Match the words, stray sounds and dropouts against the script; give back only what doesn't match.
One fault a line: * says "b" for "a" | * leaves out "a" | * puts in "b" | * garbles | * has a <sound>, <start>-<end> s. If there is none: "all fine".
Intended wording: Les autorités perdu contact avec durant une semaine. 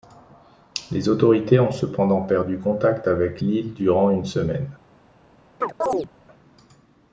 * puts in "ont cependant"
* puts in "l'île"
* has a chirp, 5.6-6.1 s